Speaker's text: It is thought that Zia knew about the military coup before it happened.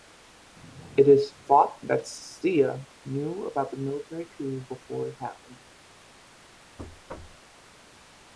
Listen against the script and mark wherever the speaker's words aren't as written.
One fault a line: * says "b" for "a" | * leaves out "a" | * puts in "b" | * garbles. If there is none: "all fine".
all fine